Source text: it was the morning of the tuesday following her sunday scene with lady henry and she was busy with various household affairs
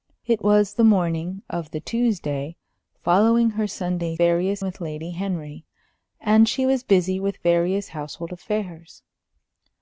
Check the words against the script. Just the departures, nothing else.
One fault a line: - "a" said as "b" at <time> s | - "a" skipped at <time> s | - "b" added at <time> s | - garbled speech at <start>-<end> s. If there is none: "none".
- "scene" said as "various" at 4.2 s